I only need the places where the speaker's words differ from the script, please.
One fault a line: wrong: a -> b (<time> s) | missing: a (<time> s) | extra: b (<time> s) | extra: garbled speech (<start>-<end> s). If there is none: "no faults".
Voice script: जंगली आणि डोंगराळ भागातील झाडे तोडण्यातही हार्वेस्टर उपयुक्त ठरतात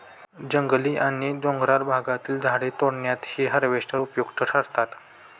no faults